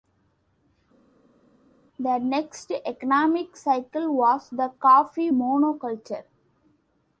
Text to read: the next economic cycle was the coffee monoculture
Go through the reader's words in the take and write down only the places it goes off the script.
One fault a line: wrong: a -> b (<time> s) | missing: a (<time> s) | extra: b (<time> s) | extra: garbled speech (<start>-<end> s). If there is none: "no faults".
no faults